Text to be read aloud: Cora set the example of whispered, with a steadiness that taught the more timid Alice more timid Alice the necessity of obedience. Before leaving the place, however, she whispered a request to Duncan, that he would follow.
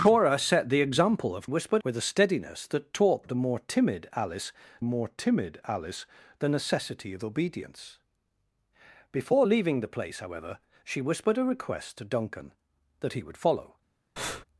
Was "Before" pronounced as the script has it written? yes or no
yes